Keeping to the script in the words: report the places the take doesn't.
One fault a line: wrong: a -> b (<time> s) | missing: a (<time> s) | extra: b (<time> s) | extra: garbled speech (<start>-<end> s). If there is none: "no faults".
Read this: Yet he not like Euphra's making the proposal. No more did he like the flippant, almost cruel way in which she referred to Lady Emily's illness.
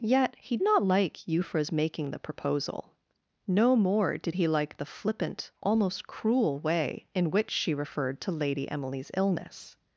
no faults